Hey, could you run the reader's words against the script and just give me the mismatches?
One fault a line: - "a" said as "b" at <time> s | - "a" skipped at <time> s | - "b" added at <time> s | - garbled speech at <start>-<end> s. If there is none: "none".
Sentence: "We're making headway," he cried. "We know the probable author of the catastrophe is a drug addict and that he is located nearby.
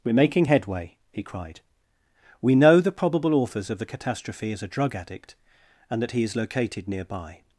- "author" said as "authors" at 3.3 s